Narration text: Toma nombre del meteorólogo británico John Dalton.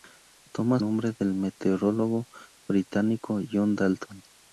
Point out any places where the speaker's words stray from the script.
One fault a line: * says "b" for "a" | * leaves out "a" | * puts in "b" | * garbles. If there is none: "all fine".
all fine